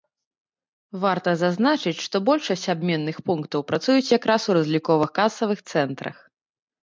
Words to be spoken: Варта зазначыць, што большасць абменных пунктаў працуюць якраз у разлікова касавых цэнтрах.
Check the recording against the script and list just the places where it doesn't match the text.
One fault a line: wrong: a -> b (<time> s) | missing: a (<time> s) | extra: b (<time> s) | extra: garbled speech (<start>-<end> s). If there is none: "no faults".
no faults